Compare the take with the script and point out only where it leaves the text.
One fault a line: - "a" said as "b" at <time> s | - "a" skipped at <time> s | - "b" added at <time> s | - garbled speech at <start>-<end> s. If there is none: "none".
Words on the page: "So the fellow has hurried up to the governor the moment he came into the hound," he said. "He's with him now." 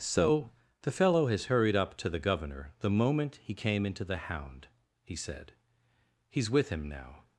none